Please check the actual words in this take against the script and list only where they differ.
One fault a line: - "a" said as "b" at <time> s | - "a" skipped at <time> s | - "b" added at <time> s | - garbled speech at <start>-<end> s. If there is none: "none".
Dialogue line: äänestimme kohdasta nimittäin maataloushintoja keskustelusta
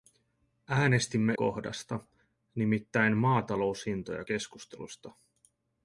none